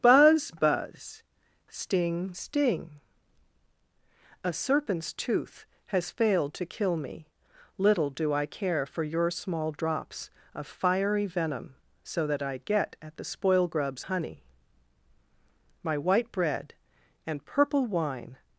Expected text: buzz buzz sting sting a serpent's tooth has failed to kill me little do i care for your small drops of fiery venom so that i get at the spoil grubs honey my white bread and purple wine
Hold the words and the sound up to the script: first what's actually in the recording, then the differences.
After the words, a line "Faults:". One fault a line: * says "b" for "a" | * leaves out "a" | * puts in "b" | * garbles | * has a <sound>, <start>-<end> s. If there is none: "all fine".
buzz buzz sting sting a serpent's tooth has failed to kill me little do i care for your small drops of fiery venom so that i get at the spoil grubs honey my white bread and purple wine
Faults:
all fine